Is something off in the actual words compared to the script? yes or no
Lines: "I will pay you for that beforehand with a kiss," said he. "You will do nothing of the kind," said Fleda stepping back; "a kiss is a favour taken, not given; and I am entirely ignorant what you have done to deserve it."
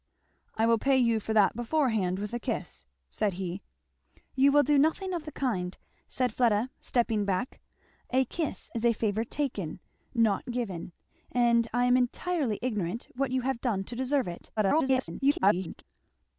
yes